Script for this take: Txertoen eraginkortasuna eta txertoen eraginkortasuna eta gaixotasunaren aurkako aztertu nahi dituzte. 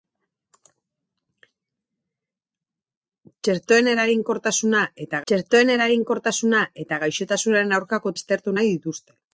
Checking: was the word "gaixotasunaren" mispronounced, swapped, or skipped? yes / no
no